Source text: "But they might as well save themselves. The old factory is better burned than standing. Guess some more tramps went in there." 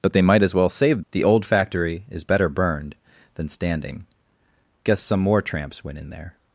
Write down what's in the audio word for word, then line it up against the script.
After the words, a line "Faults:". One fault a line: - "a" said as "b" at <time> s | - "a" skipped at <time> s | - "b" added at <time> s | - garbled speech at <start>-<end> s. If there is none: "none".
"But they might as well save. The old factory is better burned than standing. Guess some more tramps went in there."
Faults:
- "themselves" skipped at 1.0 s